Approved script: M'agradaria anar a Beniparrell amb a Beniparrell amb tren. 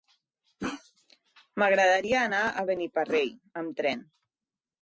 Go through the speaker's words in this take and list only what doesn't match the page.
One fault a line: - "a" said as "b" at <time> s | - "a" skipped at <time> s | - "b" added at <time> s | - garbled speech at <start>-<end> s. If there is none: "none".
- "a Beniparrell amb" skipped at 3.8 s